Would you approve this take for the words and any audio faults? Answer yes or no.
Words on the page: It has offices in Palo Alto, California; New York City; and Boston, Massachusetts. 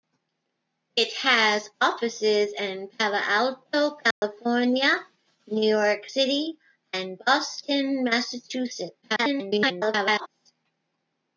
no